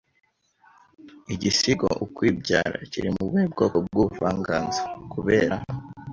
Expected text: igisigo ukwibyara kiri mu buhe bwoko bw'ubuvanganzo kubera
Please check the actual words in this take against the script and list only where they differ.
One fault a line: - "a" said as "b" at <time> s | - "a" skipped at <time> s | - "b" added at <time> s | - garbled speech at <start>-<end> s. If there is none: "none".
none